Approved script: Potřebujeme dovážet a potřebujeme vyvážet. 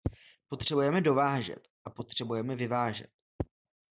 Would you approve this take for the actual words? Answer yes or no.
yes